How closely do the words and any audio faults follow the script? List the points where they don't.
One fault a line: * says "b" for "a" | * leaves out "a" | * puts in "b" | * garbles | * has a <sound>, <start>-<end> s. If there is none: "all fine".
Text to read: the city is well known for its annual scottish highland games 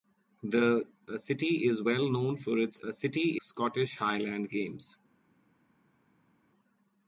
* says "city" for "annual"